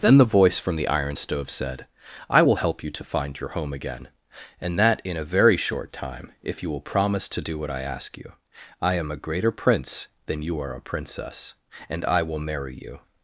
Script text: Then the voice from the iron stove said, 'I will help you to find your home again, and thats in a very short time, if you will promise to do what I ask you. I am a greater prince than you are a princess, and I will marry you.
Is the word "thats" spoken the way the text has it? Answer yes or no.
no